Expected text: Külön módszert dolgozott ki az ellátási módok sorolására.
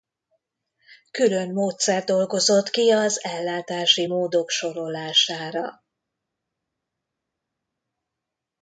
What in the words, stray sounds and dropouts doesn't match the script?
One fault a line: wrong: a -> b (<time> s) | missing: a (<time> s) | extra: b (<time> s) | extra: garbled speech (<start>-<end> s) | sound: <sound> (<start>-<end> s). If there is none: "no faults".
no faults